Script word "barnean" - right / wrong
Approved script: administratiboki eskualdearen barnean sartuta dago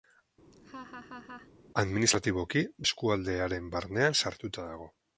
right